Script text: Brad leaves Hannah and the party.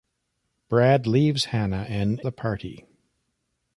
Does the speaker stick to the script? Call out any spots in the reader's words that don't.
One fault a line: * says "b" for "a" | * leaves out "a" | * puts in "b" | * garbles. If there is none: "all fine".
all fine